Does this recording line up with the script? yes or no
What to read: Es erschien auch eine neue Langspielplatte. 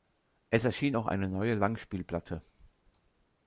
yes